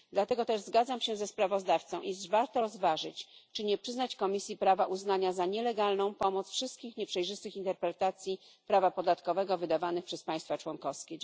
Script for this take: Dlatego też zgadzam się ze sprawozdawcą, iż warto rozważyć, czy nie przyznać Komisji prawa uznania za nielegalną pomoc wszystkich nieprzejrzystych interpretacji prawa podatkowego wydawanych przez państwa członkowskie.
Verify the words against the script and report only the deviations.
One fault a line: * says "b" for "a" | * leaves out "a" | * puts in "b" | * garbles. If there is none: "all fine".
all fine